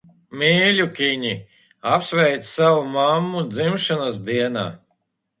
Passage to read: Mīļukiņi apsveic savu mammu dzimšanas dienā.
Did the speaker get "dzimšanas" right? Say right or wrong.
right